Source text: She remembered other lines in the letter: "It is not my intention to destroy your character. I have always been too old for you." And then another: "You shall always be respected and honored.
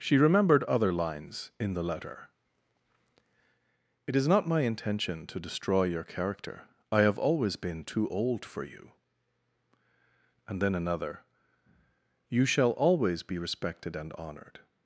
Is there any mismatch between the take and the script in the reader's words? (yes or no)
no